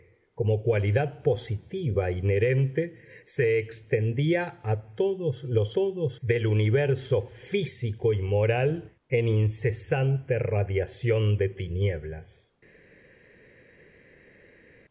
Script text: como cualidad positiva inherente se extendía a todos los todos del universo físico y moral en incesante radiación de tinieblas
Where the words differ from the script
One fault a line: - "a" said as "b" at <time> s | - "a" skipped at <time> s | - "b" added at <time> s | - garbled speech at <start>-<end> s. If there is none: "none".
none